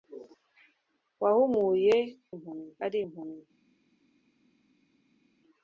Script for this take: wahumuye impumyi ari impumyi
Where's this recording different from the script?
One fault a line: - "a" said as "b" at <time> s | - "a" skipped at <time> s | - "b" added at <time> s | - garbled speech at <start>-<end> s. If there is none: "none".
none